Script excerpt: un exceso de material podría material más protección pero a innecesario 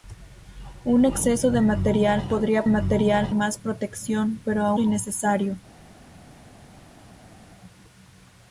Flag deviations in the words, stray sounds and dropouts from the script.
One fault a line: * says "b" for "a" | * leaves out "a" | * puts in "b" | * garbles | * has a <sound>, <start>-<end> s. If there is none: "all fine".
all fine